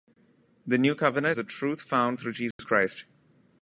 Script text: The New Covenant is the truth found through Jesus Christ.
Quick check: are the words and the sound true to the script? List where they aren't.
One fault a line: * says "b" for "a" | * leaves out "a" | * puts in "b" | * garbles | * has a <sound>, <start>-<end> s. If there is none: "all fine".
* leaves out "is"
* has a dropout, 2.5-2.6 s